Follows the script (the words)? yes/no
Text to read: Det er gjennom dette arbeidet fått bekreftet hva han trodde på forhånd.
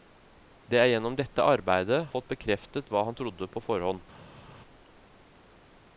yes